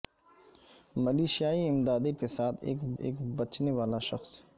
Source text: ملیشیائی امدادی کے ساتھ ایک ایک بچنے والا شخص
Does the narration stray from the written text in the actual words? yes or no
no